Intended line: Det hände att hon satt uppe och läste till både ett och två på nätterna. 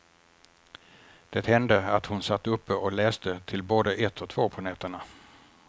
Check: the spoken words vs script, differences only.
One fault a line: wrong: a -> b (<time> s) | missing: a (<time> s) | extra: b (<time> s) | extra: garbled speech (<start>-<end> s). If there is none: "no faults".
no faults